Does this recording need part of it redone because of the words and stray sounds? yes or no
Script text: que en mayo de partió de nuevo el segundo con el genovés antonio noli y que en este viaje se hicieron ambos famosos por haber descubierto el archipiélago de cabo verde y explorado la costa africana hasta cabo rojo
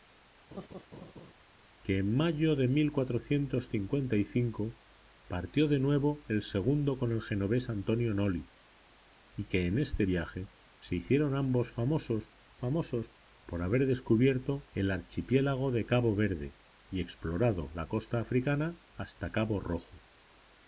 yes